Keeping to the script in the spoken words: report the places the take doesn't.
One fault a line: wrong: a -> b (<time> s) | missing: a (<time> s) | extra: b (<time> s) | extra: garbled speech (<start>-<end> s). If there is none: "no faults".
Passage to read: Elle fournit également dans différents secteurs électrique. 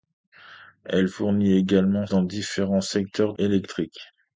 no faults